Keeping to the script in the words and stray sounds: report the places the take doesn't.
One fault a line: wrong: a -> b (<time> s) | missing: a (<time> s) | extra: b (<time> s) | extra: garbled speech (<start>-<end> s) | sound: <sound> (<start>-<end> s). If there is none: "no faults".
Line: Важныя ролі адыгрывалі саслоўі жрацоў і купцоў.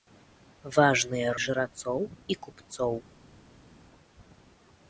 missing: ролі адыгрывалі саслоўі (1.3 s)